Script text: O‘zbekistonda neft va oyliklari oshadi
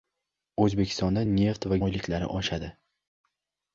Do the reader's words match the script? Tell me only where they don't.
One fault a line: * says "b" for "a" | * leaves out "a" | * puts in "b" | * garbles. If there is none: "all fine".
all fine